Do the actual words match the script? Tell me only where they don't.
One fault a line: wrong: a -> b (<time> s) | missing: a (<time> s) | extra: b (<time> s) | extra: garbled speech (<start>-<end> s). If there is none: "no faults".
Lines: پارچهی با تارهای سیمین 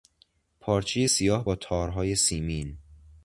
extra: سیاه (1.0 s)